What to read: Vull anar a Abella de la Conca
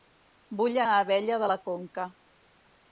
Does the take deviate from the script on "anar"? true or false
true